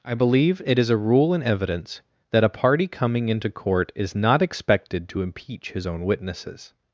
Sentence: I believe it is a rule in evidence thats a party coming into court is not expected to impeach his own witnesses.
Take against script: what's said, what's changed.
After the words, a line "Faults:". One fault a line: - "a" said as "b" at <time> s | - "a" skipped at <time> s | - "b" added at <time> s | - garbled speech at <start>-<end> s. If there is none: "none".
I believe it is a rule in evidence that a party coming into court is not expected to impeach his own witnesses.
Faults:
- "thats" said as "that" at 2.3 s